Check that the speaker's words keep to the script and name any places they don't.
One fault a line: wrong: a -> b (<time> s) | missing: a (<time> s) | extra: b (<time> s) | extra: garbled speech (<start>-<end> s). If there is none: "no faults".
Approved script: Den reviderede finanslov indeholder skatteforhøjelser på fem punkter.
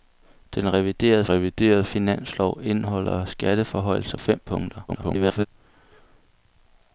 extra: reviderede (1.3 s)
missing: på (4.2 s)
extra: garbled speech (4.9-5.5 s)